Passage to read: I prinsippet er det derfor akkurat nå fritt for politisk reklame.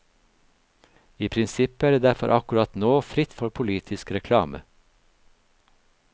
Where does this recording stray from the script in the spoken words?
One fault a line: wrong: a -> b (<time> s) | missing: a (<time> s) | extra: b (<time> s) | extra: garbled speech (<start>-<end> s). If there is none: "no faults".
no faults